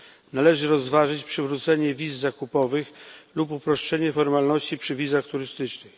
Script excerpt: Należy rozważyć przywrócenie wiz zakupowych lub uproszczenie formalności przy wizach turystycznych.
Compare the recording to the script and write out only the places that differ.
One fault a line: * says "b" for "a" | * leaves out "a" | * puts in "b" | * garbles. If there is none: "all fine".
all fine